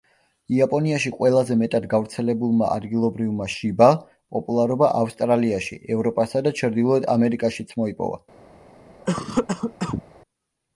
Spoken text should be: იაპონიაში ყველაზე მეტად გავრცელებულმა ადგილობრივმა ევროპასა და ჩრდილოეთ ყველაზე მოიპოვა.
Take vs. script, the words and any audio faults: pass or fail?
fail